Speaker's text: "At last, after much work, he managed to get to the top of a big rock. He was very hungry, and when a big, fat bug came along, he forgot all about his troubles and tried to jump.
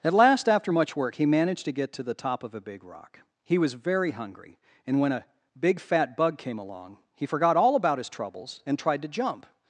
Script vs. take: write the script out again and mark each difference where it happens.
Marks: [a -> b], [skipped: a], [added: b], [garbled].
"At last, after much work, he managed to get to the top of a big rock. He was very hungry, and when a big, fat bug came along, he forgot all about his troubles and tried to jump.